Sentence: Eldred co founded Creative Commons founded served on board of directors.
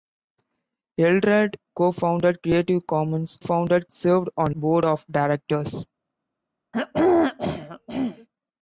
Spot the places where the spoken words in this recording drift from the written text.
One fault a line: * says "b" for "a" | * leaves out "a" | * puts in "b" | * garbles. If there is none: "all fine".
all fine